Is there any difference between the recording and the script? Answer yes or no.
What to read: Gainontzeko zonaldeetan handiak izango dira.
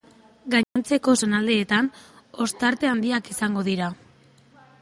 yes